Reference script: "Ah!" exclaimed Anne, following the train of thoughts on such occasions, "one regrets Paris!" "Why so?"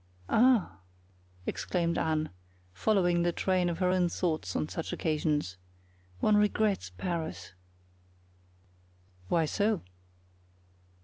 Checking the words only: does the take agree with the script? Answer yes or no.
no